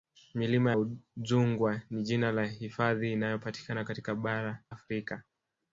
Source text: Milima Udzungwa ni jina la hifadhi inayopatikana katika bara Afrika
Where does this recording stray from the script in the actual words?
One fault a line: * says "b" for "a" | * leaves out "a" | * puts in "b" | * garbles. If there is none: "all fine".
all fine